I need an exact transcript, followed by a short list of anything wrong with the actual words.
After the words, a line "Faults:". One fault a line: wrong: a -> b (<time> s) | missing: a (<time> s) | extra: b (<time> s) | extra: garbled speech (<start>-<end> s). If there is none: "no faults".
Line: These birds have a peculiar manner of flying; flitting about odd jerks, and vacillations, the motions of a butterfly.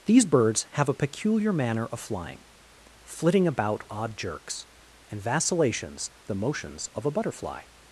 These birds have a peculiar manner of flying; flitting about odd jerks, and vacillations, the motions of a butterfly.
Faults:
no faults